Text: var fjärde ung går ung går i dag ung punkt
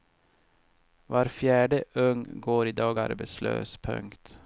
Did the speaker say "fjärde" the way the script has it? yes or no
yes